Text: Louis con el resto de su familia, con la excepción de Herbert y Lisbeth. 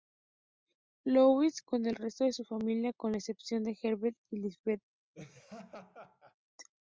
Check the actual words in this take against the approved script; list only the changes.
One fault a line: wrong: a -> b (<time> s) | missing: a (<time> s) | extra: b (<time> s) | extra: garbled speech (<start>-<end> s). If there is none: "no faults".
no faults